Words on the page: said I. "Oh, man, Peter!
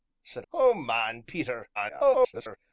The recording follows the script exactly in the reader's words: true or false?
false